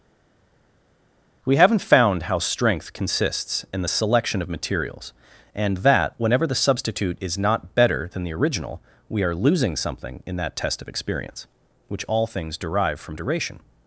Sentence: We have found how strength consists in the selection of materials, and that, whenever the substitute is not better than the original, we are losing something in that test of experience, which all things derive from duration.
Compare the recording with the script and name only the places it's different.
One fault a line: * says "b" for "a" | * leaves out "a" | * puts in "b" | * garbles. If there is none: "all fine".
* says "haven't" for "have"